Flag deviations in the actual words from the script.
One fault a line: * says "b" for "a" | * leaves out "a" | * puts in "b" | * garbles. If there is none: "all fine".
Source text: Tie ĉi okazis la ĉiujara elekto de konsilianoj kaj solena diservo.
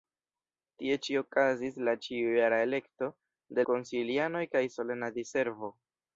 all fine